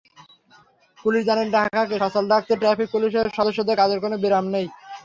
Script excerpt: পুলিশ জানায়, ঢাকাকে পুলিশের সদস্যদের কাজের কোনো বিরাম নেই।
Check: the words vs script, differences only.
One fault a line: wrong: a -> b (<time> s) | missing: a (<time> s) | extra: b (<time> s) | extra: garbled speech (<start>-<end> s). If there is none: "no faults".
extra: সচল রাখতে ট্রাফিক (2.0 s)